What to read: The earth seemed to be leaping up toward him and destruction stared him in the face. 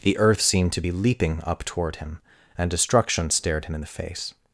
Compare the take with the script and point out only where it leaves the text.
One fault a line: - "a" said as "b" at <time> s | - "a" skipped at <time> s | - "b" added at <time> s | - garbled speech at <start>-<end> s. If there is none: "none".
none